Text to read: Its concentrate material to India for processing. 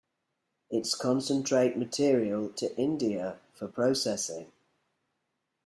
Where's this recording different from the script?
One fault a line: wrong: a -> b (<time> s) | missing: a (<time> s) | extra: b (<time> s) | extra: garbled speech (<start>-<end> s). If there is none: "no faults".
no faults